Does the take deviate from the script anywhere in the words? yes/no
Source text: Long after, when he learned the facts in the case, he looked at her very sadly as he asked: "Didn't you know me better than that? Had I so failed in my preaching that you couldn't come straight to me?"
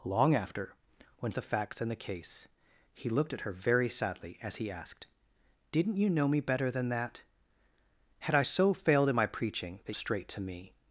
yes